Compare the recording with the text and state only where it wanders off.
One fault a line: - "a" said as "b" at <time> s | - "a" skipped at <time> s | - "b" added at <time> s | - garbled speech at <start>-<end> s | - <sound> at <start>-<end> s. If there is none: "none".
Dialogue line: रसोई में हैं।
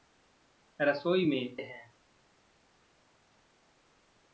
none